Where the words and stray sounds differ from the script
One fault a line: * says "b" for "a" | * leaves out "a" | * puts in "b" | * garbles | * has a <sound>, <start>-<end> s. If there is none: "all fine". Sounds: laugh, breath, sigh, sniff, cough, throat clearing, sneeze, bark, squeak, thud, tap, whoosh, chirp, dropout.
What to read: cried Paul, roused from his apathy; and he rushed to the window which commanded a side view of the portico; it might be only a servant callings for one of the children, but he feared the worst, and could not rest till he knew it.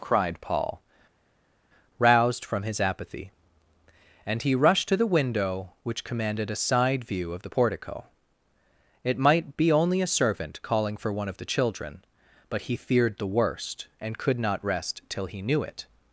* says "calling" for "callings"